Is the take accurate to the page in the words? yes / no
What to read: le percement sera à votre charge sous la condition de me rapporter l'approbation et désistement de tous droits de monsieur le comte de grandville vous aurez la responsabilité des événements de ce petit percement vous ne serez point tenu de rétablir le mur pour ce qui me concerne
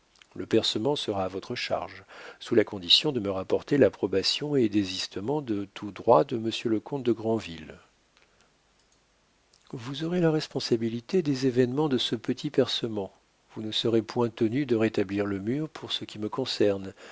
yes